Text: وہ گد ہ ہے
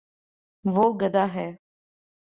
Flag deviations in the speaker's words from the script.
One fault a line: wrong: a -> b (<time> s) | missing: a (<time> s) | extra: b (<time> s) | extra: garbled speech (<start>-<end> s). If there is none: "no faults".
no faults